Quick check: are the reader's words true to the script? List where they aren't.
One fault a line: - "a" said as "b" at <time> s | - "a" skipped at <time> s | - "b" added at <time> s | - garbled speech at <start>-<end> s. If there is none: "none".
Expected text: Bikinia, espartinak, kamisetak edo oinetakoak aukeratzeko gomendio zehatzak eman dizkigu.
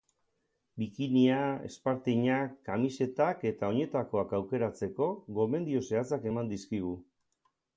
- "edo" said as "eta" at 3.5 s